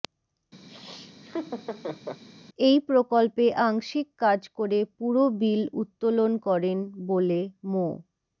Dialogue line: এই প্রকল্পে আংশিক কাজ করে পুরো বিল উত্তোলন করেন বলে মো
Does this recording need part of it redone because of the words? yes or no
no